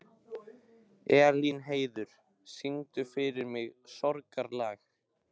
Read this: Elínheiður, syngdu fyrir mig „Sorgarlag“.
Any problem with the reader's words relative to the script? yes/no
no